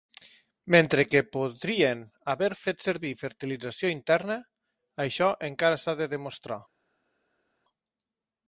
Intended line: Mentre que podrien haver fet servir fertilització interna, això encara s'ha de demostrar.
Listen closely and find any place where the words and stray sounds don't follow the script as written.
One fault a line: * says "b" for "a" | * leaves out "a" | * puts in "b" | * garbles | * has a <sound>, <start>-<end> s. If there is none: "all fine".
all fine